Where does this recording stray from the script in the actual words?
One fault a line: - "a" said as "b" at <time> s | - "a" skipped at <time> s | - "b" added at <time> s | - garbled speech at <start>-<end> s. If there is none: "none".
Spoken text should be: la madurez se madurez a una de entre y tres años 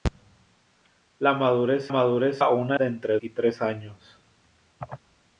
none